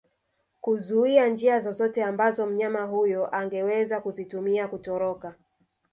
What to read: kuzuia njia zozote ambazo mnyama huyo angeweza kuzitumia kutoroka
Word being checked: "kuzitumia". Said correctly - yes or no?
yes